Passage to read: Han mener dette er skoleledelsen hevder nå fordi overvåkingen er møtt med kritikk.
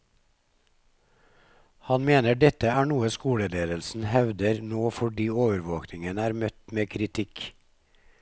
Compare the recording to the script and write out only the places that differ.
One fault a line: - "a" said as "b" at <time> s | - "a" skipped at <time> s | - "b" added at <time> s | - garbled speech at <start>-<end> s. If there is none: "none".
- "noe" added at 2.9 s